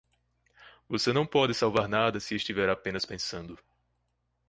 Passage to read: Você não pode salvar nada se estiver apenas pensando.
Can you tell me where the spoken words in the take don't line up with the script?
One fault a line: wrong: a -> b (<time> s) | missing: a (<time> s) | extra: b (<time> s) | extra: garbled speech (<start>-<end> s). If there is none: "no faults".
no faults